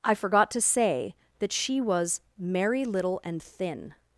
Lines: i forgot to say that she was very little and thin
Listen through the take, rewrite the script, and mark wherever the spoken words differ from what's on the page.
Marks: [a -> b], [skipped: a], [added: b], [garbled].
i forgot to say that she was [very -> merry] little and thin